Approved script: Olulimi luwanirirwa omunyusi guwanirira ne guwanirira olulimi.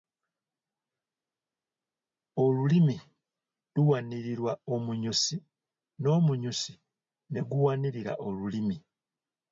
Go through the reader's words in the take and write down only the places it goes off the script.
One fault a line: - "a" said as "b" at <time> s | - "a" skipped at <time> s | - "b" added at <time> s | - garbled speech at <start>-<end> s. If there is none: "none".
- "guwanirira" said as "n'omunyusi" at 6.0 s